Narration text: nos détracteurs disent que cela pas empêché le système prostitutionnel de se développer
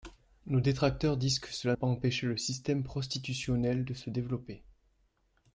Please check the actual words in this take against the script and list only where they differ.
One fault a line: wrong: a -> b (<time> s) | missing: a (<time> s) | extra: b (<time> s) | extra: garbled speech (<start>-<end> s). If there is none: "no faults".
no faults